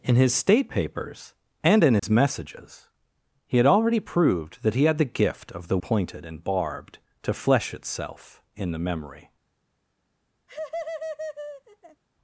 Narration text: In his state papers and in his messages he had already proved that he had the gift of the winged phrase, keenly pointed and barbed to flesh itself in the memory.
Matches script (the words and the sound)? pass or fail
fail